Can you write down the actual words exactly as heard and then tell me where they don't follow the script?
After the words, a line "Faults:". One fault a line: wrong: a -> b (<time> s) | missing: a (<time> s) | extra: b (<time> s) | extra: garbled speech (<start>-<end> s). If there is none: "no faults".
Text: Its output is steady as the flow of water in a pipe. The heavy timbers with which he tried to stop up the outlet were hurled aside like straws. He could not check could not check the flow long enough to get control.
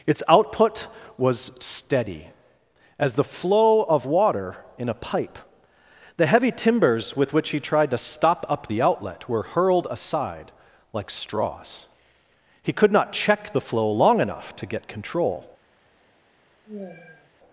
Its output was steady as the flow of water in a pipe. The heavy timbers with which he tried to stop up the outlet were hurled aside like straws. He could not check the flow long enough to get control.
Faults:
wrong: is -> was (1.2 s)
missing: could not check (13.5 s)